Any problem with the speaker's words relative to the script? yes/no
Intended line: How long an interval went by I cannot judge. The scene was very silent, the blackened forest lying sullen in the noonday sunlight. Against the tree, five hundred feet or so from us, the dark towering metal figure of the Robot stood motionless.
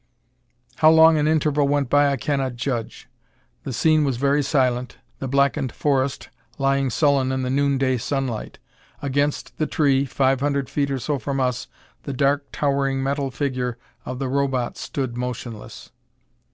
no